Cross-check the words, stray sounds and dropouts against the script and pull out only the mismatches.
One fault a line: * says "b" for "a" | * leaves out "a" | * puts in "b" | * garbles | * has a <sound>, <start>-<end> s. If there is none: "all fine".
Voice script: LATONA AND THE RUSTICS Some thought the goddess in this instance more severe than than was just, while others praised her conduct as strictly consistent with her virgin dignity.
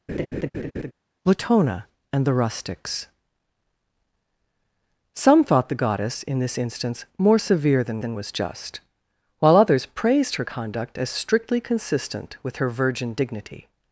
* has a laugh, 0.1-0.9 s